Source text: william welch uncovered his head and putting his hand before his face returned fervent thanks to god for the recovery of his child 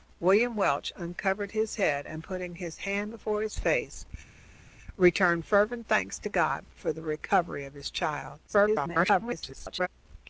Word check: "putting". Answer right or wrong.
right